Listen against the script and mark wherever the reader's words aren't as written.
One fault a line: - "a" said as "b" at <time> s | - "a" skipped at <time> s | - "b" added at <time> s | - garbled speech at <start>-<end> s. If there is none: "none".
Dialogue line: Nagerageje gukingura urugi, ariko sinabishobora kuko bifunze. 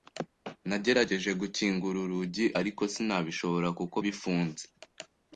none